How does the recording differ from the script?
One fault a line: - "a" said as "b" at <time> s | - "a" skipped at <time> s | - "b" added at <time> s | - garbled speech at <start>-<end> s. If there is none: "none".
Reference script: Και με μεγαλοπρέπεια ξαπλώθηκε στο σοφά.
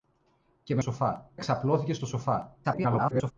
- "μεγαλοπρέπεια" said as "σοφά" at 0.8 s
- garbled speech at 2.6-3.3 s